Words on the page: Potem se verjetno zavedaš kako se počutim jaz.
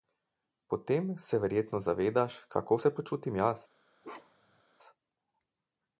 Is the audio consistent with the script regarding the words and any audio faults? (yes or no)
no